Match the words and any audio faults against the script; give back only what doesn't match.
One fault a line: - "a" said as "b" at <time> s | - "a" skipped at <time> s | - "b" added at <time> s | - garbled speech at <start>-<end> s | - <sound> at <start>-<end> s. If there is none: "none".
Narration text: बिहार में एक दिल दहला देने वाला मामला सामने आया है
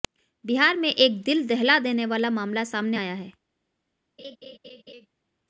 - laugh at 4.2-5.1 s